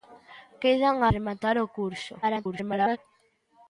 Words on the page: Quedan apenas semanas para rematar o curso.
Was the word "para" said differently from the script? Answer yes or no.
yes